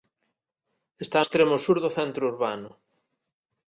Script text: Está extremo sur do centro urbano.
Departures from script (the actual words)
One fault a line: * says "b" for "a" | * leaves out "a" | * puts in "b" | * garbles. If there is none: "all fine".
all fine